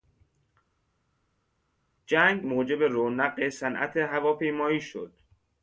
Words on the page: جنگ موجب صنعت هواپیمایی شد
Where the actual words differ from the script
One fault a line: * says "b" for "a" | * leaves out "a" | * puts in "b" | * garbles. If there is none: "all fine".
* puts in "رونق"